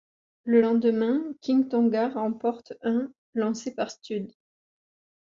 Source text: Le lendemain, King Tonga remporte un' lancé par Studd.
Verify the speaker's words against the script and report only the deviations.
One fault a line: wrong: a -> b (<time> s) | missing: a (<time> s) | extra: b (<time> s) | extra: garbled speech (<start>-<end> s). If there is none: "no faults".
no faults